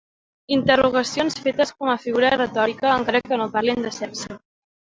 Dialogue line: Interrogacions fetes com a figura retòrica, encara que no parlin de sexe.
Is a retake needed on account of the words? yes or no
no